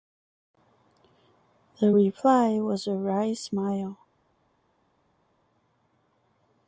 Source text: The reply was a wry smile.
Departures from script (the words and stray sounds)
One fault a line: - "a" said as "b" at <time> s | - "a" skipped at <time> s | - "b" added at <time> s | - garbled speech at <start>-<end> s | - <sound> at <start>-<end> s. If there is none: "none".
none